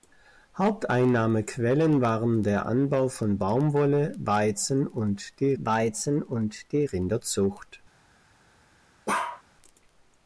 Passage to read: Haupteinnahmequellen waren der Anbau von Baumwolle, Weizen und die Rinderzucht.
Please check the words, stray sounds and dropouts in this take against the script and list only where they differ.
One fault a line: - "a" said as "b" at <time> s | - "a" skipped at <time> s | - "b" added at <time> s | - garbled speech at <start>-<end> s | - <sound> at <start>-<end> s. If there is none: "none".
- "Weizen und die" added at 5.6 s
- bark at 9.1-9.4 s